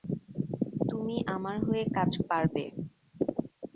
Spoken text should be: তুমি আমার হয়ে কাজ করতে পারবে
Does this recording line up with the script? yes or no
no